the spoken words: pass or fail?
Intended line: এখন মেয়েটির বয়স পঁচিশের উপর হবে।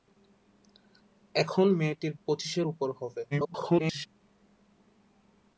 fail